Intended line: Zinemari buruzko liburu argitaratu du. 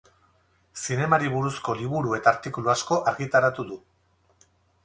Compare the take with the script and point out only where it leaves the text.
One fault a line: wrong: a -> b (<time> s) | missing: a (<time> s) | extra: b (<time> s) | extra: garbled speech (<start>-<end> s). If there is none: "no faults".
extra: eta artikulu asko (2.2 s)